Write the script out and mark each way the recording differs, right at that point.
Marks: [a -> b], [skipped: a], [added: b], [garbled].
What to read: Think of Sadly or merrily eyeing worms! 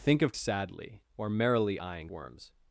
Think of Sadly or merrily eyeing worms!